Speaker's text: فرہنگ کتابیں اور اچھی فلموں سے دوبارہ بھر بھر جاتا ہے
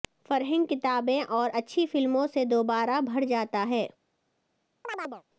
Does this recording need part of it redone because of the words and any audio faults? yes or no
yes